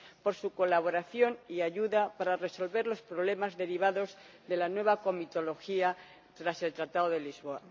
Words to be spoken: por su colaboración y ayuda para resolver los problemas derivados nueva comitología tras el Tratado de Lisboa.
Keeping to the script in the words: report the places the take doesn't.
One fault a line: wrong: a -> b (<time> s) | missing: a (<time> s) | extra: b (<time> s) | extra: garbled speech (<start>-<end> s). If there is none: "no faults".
extra: de la (4.5 s)